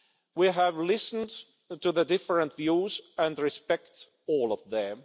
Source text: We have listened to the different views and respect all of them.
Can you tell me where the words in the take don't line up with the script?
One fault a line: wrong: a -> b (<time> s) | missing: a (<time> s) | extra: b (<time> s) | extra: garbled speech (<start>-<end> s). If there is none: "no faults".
no faults